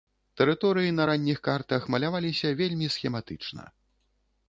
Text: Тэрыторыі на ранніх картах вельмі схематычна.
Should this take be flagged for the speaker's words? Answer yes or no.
yes